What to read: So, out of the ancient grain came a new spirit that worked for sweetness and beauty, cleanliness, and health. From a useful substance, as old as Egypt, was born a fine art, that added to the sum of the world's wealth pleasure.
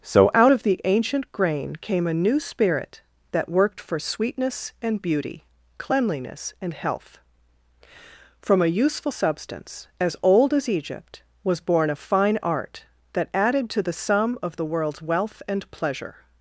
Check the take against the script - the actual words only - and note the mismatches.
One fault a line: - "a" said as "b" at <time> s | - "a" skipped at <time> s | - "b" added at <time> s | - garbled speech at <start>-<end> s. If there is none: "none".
- "and" added at 15.5 s